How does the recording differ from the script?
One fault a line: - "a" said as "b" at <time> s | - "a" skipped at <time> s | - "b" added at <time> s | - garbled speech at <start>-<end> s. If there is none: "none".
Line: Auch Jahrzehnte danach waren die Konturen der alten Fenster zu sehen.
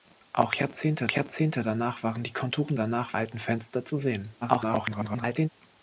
- "Jahrzehnte" added at 1.1 s
- "der" said as "danach" at 2.7 s
- garbled speech at 4.4-5.5 s